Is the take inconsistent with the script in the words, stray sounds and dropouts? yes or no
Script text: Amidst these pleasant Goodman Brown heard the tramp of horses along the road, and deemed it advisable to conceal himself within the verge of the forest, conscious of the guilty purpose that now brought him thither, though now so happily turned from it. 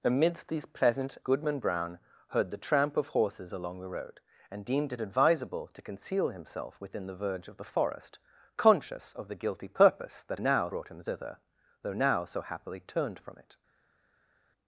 no